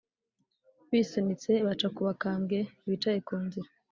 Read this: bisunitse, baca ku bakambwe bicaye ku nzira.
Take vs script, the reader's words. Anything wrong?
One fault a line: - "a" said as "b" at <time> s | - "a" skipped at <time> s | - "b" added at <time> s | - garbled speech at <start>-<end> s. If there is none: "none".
none